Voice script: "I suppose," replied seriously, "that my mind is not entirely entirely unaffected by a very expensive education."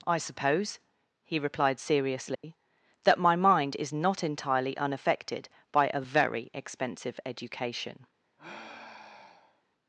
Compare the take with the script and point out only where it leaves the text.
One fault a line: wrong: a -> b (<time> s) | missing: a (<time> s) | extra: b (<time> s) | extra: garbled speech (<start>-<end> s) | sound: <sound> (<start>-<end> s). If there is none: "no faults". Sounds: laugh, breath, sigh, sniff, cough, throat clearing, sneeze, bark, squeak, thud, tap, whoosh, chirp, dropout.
extra: he (1.2 s)
sound: dropout (2.3-2.4 s)
missing: entirely (4.8 s)
sound: sigh (8.4-9.6 s)